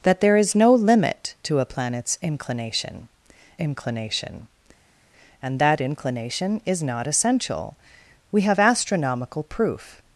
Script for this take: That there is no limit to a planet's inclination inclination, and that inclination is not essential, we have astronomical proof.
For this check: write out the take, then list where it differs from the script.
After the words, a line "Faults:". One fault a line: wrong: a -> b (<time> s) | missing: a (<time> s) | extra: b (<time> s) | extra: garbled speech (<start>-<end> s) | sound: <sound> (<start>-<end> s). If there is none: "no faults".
That there is no limit to a planet's inclination inclination, and that inclination is not essential, we have astronomical proof.
Faults:
no faults